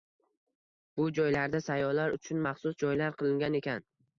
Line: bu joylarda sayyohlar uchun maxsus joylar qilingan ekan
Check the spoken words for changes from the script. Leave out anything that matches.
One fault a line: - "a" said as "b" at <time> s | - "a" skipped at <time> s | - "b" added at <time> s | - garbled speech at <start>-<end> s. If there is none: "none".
none